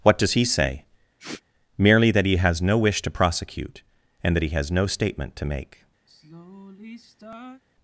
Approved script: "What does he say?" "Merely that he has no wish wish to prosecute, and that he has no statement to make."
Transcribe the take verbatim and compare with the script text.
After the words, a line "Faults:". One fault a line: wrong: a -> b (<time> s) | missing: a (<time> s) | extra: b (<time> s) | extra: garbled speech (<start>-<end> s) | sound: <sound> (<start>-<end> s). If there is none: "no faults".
"What does he say?" "Merely that he has no wish to prosecute, and that he has no statement to make."
Faults:
sound: sniff (1.2-1.4 s)
missing: wish (3.0 s)
sound: sigh (6.1-7.6 s)